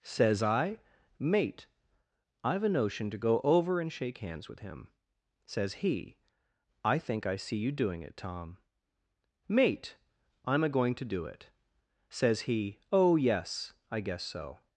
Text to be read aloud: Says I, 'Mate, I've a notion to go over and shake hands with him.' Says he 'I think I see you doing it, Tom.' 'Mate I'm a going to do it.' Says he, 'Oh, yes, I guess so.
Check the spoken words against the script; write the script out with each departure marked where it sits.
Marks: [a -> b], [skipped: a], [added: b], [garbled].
Says I, 'Mate, I've a notion to go over and shake hands with him.' Says he 'I think I see you doing it, Tom.' 'Mate I'm a going to do it.' Says he, 'Oh, yes, I guess so.